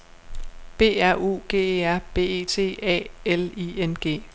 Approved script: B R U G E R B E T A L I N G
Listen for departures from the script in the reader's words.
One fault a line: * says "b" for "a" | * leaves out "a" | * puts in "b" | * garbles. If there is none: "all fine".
all fine